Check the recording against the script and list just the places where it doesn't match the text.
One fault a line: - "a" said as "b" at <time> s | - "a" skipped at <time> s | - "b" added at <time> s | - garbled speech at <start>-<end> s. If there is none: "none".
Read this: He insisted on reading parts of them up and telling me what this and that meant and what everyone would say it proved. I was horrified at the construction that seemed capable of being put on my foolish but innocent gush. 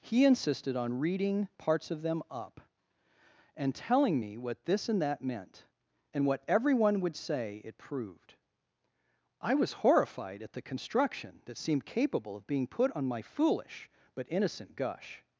none